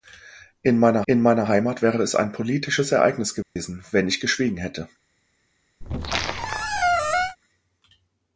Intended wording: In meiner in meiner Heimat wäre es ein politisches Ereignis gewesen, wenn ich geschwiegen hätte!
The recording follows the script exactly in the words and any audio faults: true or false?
false